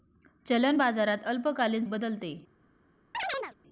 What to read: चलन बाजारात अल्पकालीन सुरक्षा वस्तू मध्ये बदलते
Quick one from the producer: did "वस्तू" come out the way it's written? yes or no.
no